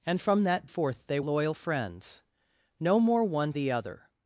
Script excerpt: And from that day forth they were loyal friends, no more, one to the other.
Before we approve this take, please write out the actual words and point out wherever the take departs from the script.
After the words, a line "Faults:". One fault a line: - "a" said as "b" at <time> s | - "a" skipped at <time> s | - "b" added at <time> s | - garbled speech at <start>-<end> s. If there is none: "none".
And from that forth they loyal friends, no more, one the other.
Faults:
- "day" skipped at 0.7 s
- "were" skipped at 1.2 s
- "to" skipped at 3.5 s